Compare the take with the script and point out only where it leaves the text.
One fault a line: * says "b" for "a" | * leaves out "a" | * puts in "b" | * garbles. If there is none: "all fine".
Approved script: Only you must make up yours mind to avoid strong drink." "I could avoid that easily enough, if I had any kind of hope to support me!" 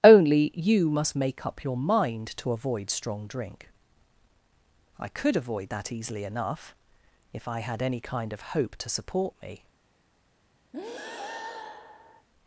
* says "your" for "yours"